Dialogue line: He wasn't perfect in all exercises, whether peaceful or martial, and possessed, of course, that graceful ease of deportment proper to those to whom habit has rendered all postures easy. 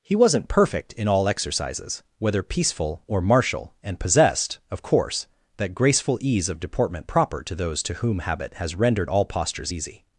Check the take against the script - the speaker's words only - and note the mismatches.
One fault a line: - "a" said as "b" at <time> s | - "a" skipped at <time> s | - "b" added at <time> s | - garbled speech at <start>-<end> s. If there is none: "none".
none